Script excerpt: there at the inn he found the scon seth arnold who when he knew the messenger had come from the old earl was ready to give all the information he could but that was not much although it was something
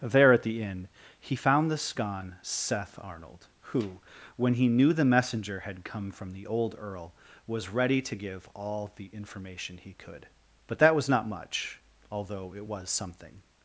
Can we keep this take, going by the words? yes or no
yes